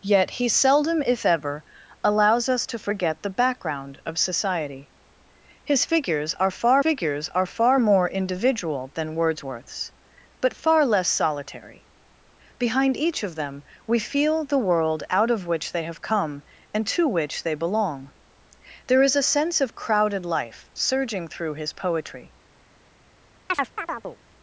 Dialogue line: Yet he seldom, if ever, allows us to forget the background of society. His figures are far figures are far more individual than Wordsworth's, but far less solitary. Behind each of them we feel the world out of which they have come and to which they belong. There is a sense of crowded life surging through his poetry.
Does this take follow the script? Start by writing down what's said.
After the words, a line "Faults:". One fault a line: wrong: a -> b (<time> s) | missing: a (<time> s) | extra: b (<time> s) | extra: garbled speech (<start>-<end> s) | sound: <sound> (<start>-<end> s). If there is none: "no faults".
Yet he seldom, if ever, allows us to forget the background of society. His figures are far figures are far more individual than Wordsworth's, but far less solitary. Behind each of them we feel the world out of which they have come and to which they belong. There is a sense of crowded life surging through his poetry.
Faults:
sound: chirp (23.5-24.2 s)